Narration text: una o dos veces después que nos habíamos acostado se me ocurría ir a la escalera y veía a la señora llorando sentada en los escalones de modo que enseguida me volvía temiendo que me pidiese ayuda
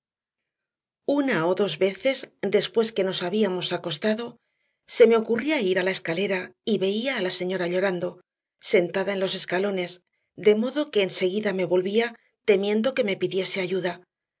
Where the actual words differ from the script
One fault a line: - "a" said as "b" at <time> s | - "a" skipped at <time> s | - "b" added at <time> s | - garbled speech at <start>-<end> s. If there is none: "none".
none